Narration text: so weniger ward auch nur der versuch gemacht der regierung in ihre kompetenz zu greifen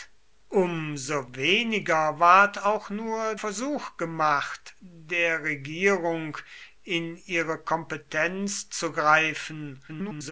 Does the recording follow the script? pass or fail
fail